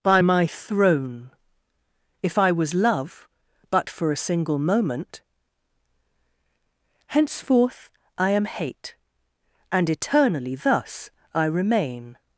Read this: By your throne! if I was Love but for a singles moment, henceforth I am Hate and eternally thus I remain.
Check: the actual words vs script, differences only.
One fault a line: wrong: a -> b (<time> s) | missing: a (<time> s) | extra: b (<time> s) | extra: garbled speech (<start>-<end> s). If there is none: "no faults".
wrong: your -> my (0.2 s)
wrong: singles -> single (4.2 s)